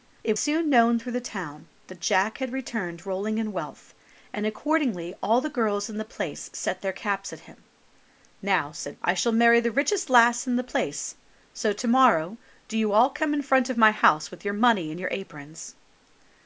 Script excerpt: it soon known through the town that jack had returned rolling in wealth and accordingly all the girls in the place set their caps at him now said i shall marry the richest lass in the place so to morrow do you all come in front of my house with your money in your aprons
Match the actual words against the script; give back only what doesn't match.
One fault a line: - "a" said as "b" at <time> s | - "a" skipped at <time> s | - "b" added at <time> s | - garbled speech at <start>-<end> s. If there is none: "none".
none